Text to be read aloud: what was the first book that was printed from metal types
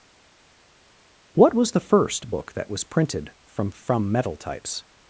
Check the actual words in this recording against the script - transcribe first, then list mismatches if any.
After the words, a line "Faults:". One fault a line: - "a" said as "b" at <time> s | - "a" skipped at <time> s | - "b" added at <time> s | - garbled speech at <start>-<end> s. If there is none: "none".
what was the first book that was printed from from metal types
Faults:
- "from" added at 3.7 s